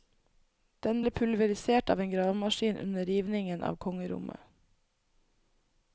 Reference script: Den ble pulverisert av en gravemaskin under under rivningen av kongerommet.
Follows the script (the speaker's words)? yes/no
no